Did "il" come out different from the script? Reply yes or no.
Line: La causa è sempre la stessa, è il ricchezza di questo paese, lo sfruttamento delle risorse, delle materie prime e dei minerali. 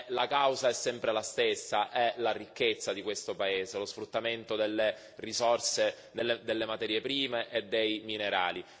yes